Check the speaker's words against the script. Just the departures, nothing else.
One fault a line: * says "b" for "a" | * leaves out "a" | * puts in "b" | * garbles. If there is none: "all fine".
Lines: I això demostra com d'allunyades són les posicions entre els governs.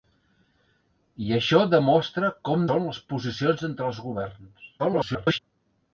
* leaves out "d'allunyades"
* garbles